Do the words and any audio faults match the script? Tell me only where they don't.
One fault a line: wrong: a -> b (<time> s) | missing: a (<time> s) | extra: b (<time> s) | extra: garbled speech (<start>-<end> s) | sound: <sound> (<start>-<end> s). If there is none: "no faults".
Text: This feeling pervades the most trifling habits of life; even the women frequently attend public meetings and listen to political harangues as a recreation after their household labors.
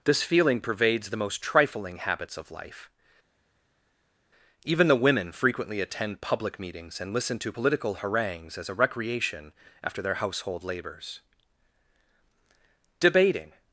extra: Debating (13.0 s)